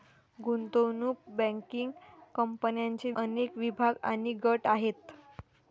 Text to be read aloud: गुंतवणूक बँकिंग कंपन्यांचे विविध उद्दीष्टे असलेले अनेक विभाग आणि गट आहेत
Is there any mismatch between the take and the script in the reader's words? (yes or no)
yes